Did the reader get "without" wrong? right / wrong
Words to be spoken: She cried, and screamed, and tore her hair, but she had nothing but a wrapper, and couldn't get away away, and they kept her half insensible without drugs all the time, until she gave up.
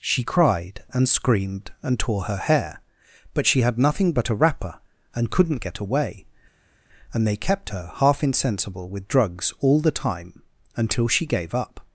wrong